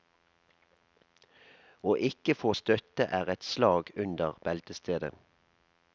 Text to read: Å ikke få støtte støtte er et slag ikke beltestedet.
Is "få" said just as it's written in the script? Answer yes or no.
yes